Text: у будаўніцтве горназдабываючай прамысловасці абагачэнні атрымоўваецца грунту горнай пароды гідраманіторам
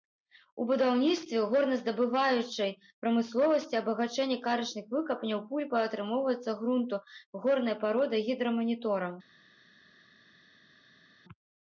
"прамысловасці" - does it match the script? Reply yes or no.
yes